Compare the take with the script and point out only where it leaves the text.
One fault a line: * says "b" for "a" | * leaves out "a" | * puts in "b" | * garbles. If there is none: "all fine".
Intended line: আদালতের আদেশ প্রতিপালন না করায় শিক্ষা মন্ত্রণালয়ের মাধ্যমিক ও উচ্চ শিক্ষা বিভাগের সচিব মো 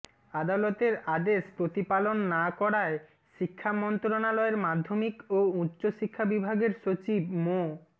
all fine